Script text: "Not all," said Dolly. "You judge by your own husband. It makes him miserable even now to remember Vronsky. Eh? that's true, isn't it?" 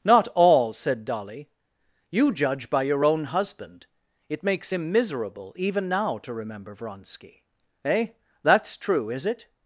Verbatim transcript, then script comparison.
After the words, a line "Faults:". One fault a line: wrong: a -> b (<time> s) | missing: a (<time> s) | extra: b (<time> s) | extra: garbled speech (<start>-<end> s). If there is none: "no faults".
"Not all," said Dolly. "You judge by your own husband. It makes him miserable even now to remember Vronsky. Eh? that's true, is it?"
Faults:
wrong: isn't -> is (9.1 s)